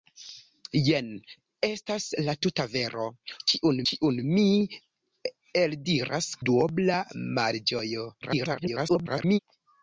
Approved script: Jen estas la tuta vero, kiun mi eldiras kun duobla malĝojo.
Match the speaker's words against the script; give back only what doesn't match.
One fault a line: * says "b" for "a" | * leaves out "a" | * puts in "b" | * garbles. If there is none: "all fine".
* puts in "kiun"
* leaves out "kun"
* garbles